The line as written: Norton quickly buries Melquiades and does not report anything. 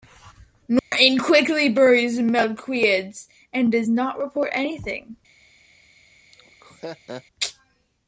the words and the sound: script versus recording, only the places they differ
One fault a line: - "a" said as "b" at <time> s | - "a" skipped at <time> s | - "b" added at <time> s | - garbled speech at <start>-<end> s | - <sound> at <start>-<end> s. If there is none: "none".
- dropout at 0.8-0.9 s
- laugh at 6.3-7.2 s